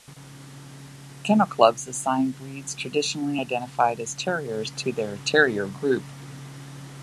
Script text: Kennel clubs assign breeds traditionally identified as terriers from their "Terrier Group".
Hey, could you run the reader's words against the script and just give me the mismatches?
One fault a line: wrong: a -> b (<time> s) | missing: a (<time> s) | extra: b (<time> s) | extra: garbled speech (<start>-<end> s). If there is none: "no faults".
wrong: from -> to (4.8 s)